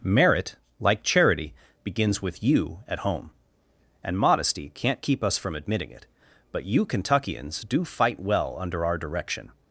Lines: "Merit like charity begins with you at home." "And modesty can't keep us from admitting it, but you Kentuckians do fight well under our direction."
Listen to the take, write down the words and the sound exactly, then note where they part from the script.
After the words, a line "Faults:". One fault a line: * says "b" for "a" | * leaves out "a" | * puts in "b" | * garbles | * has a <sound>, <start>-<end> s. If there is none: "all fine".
"Merit like charity begins with you at home." "And modesty can't keep us from admitting it, but you Kentuckians do fight well under our direction."
Faults:
all fine